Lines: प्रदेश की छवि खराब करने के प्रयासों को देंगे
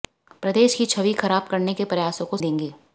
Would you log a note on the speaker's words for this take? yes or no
no